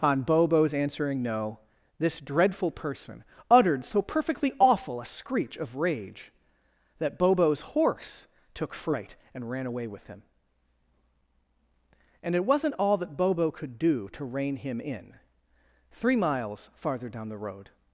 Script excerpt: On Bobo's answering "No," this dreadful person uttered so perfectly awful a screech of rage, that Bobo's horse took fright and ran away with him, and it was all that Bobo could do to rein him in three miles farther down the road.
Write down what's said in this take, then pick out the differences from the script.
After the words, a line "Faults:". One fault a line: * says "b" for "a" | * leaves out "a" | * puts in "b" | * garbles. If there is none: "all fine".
On Bobo's answering "No," this dreadful person uttered so perfectly awful a screech of rage, that Bobo's horse took fright and ran away with him, and it wasn't all that Bobo could do to rein him in three miles farther down the road.
Faults:
* says "wasn't" for "was"